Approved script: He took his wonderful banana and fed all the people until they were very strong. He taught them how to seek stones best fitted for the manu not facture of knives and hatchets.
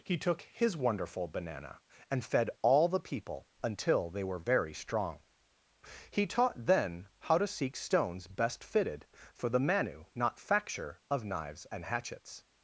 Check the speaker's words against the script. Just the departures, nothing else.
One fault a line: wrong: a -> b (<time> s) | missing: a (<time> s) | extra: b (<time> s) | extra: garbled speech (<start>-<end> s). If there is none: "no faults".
wrong: them -> then (6.7 s)